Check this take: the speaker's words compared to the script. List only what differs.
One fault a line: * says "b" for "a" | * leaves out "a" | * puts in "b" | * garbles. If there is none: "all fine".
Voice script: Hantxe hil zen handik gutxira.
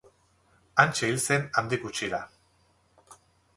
all fine